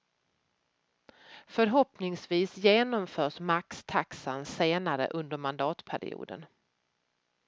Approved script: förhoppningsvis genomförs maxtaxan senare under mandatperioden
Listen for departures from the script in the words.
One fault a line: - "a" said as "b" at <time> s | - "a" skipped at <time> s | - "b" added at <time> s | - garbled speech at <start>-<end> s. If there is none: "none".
none